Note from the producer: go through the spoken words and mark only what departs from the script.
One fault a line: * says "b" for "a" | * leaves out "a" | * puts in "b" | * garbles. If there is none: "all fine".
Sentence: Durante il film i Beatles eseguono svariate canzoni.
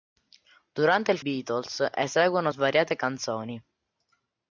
* leaves out "film i"